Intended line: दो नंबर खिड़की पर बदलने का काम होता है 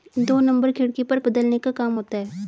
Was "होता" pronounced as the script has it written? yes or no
yes